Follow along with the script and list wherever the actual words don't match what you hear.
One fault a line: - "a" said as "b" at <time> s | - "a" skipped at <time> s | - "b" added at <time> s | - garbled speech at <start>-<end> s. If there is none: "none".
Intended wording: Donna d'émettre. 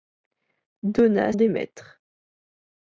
none